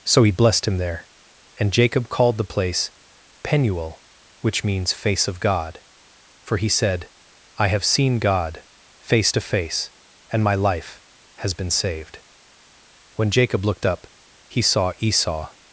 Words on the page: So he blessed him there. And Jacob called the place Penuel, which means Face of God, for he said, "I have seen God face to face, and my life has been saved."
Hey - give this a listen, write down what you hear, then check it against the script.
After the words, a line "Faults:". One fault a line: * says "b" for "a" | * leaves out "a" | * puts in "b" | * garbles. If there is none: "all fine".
So he blessed him there. And Jacob called the place Penuel, which means Face of God, for he said, "I have seen God face to face, and my life has been saved." When Jacob looked up, he saw Esau
Faults:
* puts in "When Jacob looked up he saw Esau"